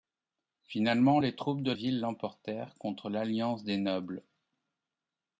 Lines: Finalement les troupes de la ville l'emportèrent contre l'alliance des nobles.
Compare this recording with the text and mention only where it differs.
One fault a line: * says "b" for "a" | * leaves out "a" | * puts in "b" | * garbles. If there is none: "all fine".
* leaves out "la"